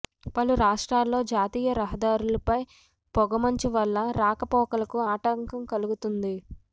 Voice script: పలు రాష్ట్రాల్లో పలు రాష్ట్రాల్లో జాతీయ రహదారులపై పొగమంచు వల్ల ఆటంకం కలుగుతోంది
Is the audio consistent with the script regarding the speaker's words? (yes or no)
no